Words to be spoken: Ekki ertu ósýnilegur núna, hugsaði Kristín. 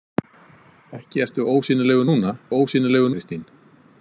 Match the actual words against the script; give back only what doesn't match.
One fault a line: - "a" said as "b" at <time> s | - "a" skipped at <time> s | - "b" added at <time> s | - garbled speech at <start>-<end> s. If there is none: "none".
- "hugsaði" said as "ósýnilegur" at 2.6 s